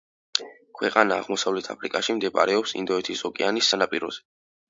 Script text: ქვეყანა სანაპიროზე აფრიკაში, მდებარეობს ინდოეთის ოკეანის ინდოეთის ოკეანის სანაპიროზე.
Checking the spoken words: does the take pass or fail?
fail